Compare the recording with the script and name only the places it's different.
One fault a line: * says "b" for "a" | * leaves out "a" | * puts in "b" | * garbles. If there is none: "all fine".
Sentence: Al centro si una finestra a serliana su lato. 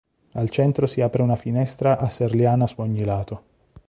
* puts in "apre"
* puts in "ogni"